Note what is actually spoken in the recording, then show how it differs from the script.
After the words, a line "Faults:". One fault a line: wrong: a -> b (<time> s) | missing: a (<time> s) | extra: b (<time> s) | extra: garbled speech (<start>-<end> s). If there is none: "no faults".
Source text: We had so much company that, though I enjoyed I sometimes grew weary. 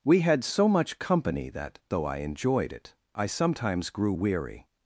We had so much company that, though I enjoyed it, I sometimes grew weary.
Faults:
extra: it (2.7 s)